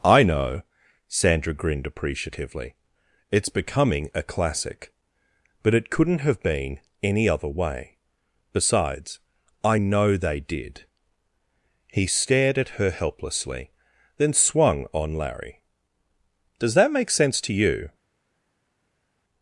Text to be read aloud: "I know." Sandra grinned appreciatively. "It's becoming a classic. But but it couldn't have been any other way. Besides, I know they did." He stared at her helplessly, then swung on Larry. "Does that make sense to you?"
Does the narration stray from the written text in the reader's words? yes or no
yes